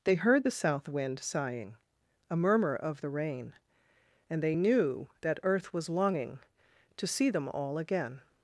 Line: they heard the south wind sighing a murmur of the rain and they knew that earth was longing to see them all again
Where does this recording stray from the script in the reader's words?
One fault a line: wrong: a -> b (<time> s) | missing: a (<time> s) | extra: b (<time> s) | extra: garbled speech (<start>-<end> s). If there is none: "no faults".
no faults